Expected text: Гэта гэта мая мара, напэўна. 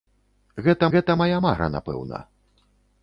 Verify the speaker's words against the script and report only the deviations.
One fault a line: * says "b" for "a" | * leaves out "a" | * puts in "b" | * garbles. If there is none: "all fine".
all fine